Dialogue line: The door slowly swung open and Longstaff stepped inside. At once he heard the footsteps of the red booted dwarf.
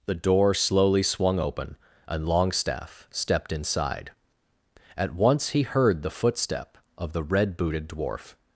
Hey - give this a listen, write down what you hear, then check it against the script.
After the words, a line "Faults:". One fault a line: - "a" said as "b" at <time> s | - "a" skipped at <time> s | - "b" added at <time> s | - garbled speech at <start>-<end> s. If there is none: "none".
The door slowly swung open and Longstaff stepped inside. At once he heard the footstep of the red booted dwarf.
Faults:
- "footsteps" said as "footstep" at 6.1 s